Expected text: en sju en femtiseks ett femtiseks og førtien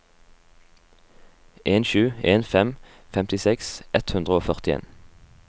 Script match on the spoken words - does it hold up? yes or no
no